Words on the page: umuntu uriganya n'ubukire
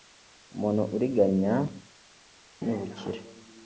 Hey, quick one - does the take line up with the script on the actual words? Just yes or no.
yes